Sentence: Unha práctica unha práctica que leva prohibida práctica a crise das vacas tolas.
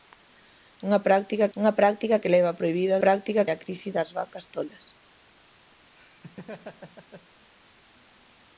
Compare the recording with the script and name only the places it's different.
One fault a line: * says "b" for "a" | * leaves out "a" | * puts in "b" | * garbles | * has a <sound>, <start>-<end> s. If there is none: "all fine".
* has a laugh, 6.0-7.5 s